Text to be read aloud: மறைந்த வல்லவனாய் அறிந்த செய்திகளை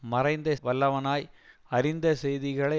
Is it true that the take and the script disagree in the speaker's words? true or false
false